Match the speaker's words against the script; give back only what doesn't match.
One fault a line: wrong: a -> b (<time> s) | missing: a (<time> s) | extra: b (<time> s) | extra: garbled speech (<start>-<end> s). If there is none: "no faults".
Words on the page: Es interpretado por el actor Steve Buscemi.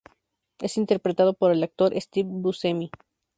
no faults